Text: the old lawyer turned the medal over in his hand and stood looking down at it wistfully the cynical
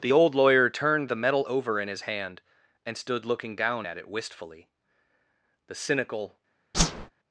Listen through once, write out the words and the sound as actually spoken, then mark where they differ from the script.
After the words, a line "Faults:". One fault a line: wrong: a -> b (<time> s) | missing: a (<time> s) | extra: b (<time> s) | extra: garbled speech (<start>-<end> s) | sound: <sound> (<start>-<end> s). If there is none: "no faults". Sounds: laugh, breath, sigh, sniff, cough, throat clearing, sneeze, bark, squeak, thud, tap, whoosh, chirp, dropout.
the old lawyer turned the medal over in his hand and stood looking down at it wistfully the cynical
Faults:
sound: whoosh (6.7-7.1 s)